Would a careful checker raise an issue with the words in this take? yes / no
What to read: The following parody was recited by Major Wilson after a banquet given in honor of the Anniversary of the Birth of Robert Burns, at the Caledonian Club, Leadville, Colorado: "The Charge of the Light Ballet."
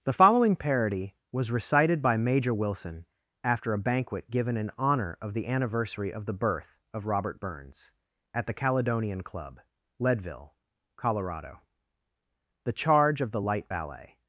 no